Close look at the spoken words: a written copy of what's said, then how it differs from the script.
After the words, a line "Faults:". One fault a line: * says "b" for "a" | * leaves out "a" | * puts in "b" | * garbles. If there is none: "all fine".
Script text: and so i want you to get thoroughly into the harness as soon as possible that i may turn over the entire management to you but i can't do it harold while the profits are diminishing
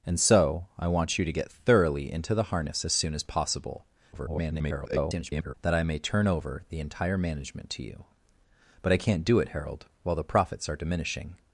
and so i want you to get thoroughly into the harness as soon as possible [garbled] that i may turn over the entire management to you but i can't do it harold while the profits are diminishing
Faults:
* garbles